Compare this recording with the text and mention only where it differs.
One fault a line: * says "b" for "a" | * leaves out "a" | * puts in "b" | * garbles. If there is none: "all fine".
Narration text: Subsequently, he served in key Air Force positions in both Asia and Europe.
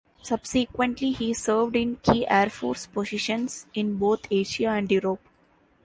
all fine